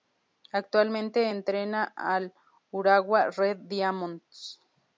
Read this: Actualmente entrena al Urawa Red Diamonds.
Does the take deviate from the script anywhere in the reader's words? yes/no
no